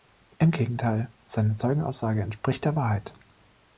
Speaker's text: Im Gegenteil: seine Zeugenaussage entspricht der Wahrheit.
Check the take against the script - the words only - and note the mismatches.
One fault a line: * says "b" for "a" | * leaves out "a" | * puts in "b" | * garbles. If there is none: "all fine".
all fine